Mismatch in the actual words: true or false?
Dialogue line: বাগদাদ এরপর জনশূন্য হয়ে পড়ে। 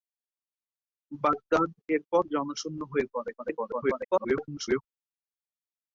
true